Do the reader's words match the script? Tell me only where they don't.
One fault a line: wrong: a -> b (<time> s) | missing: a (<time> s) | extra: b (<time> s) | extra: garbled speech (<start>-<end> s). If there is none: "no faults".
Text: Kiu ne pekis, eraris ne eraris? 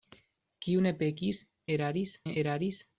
no faults